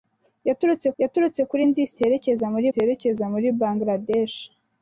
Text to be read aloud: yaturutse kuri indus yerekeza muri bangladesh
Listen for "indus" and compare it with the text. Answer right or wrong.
right